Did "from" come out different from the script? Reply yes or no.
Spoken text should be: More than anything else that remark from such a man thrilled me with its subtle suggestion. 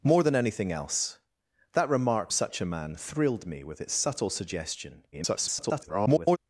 yes